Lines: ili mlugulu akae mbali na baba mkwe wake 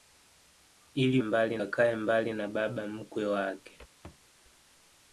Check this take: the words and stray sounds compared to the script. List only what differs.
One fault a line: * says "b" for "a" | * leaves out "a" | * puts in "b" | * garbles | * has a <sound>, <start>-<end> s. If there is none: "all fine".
* says "mbali" for "mlugulu"
* has a thud, 4.0-4.3 s